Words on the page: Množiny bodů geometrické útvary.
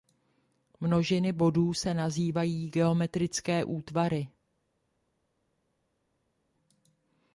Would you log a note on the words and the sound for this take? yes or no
yes